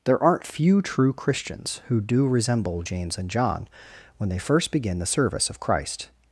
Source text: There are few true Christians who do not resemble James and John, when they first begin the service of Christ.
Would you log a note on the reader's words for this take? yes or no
yes